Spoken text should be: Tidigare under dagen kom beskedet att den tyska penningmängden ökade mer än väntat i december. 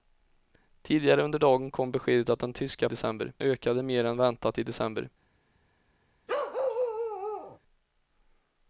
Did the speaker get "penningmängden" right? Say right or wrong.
wrong